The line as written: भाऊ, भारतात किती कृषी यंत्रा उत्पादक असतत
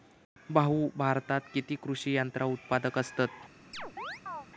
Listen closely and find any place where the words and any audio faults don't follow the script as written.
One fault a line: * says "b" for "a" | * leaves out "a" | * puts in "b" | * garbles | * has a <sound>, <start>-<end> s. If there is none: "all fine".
* has a chirp, 3.7-4.5 s